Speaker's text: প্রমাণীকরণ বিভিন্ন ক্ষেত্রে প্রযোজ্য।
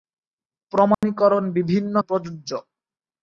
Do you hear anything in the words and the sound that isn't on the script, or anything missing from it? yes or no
yes